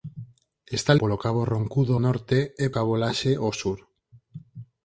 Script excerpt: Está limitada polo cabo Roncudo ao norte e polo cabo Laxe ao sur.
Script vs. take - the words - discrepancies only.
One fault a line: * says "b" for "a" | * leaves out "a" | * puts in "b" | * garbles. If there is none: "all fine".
* leaves out "limitada"
* leaves out "ao"
* leaves out "polo"